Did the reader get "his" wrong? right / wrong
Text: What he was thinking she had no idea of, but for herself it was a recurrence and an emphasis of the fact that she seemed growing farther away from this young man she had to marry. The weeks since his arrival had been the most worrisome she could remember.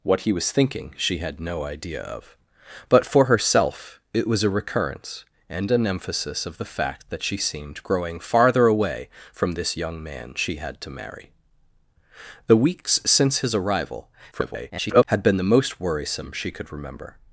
right